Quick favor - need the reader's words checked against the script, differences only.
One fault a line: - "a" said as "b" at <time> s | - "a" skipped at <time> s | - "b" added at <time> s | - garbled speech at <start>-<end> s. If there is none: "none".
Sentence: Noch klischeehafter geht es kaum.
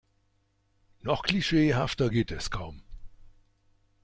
none